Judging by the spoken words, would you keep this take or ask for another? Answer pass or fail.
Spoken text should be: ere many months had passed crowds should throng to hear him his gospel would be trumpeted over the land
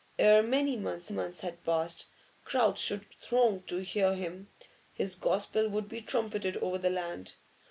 fail